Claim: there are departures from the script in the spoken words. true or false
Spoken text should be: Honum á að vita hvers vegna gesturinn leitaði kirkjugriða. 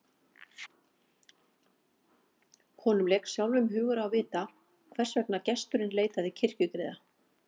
true